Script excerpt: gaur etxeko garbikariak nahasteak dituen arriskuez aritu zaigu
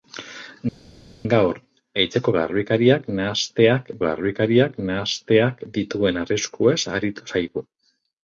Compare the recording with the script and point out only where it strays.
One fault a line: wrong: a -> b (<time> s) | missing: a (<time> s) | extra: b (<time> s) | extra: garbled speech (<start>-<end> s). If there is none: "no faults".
extra: garbikariak nahasteak (4.0 s)